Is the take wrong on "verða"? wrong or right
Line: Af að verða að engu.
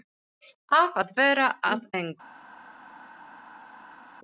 right